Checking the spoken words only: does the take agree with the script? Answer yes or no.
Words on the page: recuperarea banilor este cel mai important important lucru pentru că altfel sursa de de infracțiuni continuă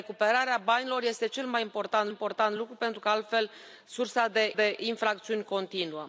yes